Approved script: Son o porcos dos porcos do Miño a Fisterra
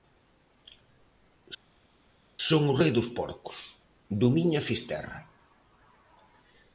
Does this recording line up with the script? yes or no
no